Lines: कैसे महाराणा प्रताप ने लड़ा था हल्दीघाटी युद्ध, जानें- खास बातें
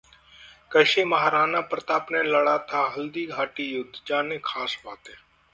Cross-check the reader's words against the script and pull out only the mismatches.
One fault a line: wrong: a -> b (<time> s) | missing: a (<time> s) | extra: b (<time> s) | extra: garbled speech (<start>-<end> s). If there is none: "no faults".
no faults